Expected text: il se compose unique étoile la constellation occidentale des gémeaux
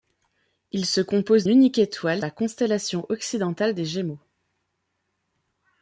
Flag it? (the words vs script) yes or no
no